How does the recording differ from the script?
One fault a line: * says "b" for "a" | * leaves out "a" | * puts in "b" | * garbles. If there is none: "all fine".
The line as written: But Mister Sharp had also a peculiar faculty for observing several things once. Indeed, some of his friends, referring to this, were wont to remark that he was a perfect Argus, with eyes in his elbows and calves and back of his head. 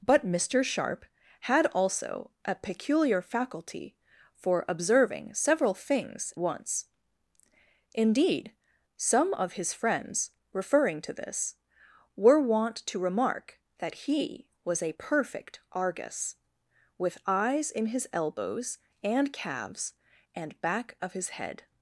all fine